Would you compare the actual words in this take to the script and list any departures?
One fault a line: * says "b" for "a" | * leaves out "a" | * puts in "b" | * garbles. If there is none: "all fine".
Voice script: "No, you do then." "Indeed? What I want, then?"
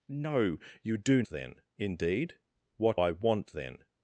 all fine